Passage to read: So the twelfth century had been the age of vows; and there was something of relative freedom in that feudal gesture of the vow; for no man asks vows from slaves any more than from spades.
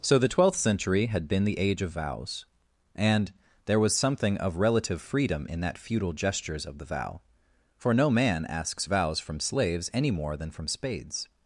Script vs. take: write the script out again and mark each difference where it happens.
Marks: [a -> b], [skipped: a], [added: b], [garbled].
So the twelfth century had been the age of vows; and there was something of relative freedom in that feudal [gesture -> gestures] of the vow; for no man asks vows from slaves any more than from spades.